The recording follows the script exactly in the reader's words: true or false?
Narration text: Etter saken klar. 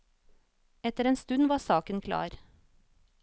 false